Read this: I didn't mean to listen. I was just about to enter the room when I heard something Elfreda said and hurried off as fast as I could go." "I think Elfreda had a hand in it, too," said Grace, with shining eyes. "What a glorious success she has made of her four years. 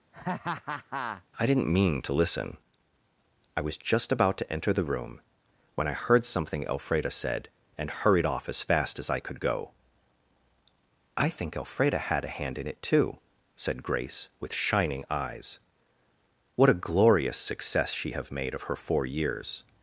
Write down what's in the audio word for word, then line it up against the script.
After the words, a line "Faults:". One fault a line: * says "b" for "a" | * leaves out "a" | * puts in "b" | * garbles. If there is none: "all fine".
I didn't mean to listen. I was just about to enter the room when I heard something Elfreda said and hurried off as fast as I could go." "I think Elfreda had a hand in it, too," said Grace, with shining eyes. "What a glorious success she have made of her four years.
Faults:
* says "have" for "has"